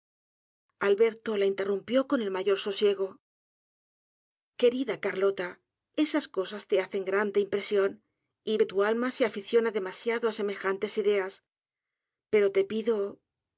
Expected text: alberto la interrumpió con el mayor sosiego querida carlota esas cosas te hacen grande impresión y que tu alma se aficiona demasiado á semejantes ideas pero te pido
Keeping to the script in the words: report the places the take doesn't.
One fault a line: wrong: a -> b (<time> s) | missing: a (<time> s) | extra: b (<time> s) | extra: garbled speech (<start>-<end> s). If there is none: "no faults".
no faults